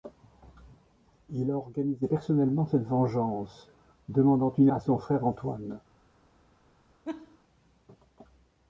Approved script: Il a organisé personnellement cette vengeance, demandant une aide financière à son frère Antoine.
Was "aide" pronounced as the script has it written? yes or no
no